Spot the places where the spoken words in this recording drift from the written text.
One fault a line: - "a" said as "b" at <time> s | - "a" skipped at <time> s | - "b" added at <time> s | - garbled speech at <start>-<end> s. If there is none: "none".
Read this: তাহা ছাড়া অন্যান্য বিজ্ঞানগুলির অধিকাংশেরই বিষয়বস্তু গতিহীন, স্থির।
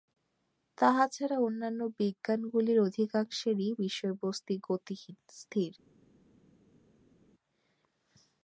none